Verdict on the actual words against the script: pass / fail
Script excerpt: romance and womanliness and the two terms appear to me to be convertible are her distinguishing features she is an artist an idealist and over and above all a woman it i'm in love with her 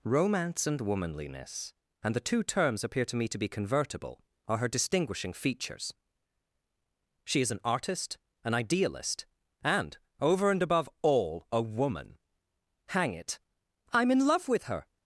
fail